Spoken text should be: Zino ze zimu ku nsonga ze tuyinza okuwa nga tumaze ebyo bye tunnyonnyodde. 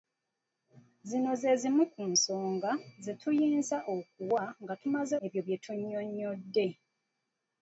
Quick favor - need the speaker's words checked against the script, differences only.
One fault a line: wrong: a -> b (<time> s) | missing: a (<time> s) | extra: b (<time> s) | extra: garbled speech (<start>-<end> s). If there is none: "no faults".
no faults